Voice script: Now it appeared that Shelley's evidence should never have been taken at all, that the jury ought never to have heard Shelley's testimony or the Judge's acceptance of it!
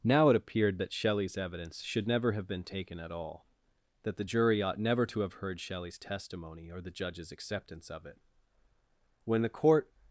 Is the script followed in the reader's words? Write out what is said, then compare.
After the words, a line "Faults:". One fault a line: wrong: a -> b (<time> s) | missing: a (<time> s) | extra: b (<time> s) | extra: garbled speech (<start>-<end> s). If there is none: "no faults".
Now it appeared that Shelley's evidence should never have been taken at all, that the jury ought never to have heard Shelley's testimony or the Judge's acceptance of it! When the court
Faults:
extra: When the court (9.2 s)